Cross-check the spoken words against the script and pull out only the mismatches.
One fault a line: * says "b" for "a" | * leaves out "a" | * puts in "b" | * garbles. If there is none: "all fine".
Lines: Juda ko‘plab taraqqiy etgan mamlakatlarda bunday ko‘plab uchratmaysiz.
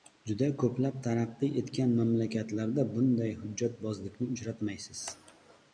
* says "hujjatbozlikni" for "ko‘plab"